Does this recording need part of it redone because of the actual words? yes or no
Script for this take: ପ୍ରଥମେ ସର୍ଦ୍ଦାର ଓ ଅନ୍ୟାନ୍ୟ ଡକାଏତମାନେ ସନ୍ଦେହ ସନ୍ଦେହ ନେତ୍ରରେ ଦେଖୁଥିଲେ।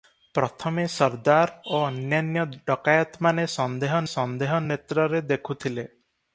no